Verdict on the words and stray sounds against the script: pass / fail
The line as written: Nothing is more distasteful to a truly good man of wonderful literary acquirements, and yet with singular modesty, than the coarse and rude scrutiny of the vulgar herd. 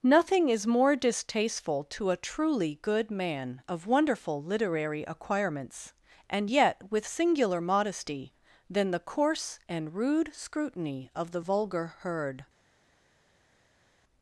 pass